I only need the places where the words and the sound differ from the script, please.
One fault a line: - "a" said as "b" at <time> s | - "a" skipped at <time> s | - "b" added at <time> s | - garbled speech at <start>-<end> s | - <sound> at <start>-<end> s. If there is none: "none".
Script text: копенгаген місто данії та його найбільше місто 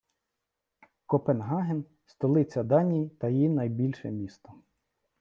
- "місто" said as "столиця" at 2.0 s
- "його" said as "її" at 3.3 s